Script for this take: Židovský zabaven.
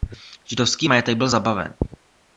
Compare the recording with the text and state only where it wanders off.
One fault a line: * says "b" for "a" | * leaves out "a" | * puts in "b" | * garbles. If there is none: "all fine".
* puts in "majetek byl"